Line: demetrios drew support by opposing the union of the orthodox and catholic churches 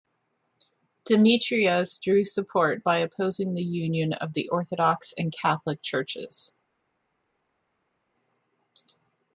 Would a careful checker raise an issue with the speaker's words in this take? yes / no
no